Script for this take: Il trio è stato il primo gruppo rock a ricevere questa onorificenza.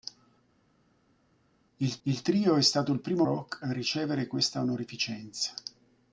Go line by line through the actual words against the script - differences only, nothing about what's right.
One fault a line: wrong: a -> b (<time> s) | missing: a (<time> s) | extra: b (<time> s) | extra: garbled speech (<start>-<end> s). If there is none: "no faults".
extra: il (2.0 s)
missing: gruppo (3.3 s)